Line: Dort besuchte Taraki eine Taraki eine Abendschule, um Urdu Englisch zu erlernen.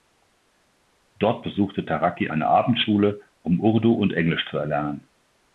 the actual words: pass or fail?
fail